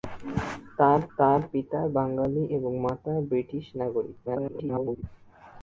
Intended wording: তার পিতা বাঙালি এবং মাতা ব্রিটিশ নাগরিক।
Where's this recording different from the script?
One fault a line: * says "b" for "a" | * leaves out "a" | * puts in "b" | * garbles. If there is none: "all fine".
* puts in "তার"
* garbles